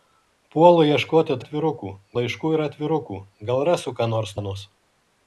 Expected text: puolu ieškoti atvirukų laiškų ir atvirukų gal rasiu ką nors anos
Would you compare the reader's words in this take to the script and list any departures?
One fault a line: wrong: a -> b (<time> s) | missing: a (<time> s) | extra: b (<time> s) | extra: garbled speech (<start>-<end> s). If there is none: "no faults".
no faults